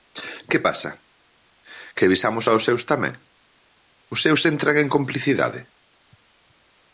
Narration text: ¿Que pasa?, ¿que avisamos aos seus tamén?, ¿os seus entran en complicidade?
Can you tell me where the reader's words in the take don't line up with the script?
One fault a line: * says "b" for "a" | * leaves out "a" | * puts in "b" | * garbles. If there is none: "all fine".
all fine